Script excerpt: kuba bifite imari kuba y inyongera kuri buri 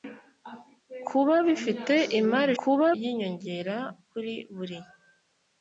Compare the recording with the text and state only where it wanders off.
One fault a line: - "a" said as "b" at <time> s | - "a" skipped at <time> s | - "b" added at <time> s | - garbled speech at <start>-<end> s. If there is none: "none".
none